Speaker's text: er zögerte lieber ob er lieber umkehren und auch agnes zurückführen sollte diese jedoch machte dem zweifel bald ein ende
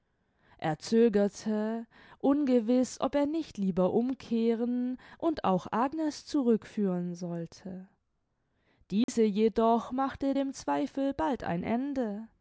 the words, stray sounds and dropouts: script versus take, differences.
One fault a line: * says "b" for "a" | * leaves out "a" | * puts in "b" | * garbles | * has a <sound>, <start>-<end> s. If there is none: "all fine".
* says "ungewiß" for "lieber"
* puts in "nicht"
* has a dropout, 9.0-9.1 s